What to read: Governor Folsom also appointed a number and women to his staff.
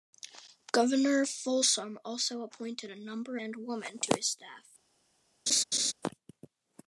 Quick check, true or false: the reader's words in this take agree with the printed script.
true